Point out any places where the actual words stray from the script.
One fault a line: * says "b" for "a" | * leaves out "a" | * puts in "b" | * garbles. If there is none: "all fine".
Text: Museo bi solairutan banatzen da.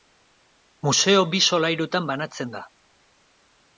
all fine